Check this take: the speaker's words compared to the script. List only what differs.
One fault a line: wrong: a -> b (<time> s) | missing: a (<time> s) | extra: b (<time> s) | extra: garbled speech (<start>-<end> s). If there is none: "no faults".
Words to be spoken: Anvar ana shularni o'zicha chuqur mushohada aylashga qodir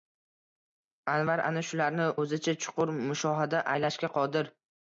no faults